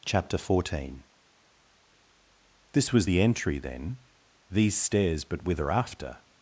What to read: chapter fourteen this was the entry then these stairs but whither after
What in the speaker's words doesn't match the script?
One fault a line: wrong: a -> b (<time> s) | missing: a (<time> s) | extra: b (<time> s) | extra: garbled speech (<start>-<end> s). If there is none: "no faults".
no faults